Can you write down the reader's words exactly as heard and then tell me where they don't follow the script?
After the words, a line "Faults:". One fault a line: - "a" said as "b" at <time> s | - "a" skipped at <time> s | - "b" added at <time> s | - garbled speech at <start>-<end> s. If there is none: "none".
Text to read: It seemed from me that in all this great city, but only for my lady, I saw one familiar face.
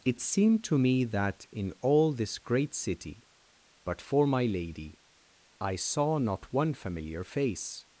It seemed to me that in all this great city, but for my lady, I saw not one familiar face.
Faults:
- "from" said as "to" at 0.7 s
- "only" skipped at 4.0 s
- "not" added at 6.2 s